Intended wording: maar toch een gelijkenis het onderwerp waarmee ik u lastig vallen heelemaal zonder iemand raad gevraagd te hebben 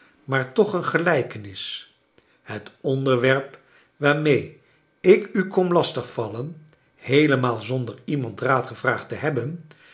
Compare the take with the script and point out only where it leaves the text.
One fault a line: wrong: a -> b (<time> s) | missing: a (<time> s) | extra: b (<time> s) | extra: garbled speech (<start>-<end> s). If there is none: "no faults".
extra: kom (5.5 s)